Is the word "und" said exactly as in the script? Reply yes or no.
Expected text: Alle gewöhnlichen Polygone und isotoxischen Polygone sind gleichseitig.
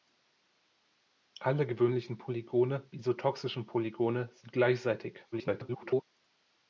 no